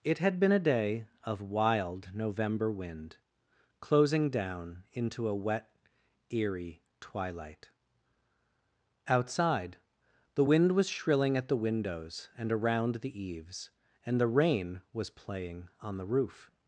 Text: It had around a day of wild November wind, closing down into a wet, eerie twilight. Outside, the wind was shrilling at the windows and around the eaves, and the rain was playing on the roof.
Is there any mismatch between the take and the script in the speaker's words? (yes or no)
yes